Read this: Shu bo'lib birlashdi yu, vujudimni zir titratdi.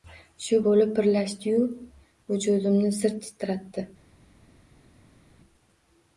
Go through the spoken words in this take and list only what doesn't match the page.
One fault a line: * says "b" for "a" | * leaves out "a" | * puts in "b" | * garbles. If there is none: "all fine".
all fine